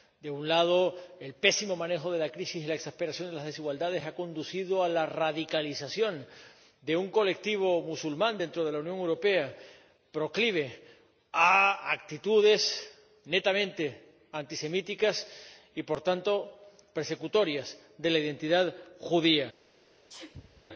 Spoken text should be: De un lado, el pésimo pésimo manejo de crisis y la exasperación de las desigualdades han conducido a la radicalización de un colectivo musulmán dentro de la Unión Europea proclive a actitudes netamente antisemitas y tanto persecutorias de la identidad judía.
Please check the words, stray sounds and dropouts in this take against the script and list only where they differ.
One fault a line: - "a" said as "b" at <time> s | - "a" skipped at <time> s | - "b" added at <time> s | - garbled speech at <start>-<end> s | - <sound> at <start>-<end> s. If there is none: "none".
- "pésimo" skipped at 1.8 s
- "la" added at 2.2 s
- "por" added at 15.8 s
- sneeze at 20.1-20.6 s